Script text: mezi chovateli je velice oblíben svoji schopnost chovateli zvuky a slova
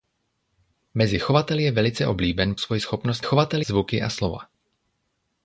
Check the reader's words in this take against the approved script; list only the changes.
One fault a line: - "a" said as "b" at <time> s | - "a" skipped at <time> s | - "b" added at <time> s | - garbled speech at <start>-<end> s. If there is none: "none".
none